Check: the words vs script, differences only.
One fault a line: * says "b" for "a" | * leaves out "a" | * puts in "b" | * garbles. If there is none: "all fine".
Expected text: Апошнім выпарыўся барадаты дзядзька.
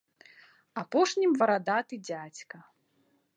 * leaves out "выпарыўся"